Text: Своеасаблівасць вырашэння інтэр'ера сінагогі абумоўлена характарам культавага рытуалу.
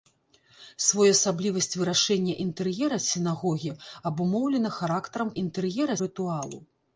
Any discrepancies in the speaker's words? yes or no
yes